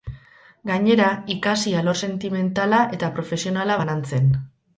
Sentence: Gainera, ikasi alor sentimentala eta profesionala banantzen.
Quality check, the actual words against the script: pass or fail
pass